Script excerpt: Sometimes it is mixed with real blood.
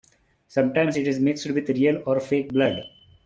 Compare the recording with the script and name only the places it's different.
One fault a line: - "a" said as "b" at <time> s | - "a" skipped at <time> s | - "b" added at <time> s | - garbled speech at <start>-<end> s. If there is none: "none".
- "or fake" added at 2.1 s